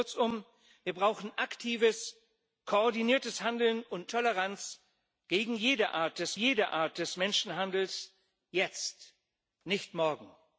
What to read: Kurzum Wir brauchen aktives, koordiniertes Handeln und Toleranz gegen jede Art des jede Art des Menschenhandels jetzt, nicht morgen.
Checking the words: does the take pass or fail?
pass